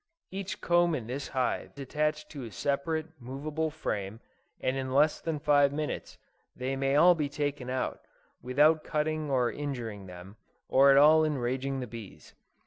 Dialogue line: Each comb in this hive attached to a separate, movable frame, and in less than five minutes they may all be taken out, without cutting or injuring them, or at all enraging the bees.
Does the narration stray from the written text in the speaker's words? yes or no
no